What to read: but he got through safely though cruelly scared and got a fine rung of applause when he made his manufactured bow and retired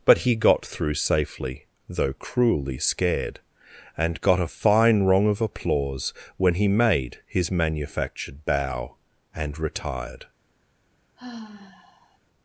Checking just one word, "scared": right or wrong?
right